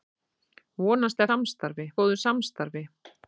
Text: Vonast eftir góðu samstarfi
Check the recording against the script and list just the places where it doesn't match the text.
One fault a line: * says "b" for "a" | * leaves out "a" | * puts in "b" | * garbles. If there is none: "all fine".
* says "samstarfi" for "eftir"